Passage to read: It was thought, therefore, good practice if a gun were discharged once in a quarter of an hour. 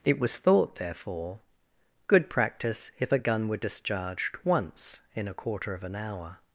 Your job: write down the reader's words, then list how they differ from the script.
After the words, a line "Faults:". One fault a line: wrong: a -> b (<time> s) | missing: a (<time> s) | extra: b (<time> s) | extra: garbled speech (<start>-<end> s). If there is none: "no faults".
It was thought, therefore, good practice if a gun were discharged once in a quarter of an hour.
Faults:
no faults